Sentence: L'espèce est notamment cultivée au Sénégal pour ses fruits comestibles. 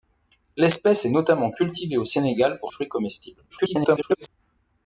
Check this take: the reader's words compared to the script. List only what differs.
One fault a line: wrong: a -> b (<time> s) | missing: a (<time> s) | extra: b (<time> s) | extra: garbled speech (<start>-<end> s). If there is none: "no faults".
missing: ses (2.7 s)
extra: garbled speech (3.5-4.3 s)